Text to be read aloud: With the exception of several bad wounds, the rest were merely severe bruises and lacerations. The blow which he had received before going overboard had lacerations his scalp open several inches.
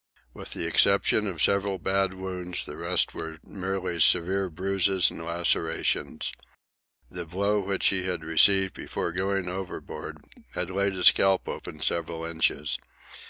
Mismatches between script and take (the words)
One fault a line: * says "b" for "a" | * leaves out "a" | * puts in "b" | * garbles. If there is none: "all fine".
* says "laid" for "lacerations"